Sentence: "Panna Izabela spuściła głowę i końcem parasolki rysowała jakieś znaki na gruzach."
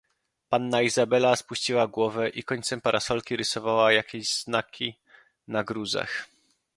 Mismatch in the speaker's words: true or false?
false